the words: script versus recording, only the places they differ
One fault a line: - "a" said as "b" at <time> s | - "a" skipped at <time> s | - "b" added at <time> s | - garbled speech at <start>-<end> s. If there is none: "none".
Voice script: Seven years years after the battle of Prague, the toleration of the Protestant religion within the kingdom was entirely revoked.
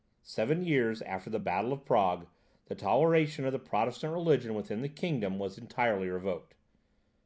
- "years" skipped at 1.0 s